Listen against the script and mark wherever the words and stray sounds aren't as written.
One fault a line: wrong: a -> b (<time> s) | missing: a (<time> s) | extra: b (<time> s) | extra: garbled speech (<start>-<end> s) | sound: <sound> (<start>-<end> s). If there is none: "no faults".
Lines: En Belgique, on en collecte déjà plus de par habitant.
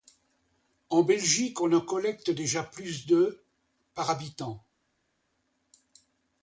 no faults